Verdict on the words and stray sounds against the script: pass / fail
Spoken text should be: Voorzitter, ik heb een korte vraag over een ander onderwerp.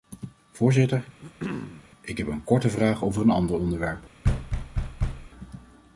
fail